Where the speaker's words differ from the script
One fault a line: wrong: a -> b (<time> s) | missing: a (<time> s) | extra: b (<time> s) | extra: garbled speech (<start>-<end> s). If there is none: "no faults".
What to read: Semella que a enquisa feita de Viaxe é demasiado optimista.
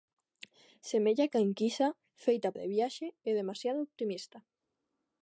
no faults